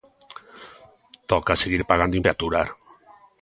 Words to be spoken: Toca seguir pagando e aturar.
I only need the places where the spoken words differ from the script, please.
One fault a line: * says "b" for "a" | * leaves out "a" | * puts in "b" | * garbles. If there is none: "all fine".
all fine